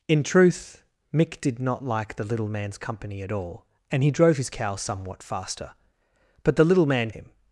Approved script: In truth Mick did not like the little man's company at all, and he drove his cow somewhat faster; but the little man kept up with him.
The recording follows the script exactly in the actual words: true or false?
false